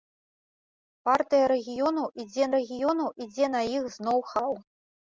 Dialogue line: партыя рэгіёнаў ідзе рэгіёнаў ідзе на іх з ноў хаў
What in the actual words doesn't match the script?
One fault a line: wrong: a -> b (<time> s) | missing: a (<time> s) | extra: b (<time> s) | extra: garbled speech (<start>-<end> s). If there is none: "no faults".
no faults